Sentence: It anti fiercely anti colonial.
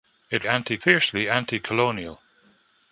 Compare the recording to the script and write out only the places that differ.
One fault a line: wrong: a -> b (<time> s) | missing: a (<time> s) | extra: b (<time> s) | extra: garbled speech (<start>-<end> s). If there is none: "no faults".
no faults